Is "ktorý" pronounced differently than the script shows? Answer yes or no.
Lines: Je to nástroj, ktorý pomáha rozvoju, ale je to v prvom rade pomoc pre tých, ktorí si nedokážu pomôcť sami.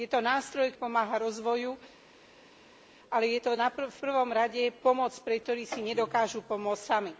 yes